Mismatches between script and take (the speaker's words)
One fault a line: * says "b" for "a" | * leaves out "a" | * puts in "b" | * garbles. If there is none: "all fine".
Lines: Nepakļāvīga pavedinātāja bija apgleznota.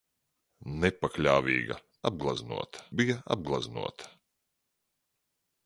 * says "apgleznota" for "pavedinātāja"